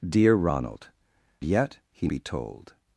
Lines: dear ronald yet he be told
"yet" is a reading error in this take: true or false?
false